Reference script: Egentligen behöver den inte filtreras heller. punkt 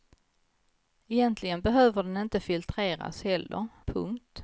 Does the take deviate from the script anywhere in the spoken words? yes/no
no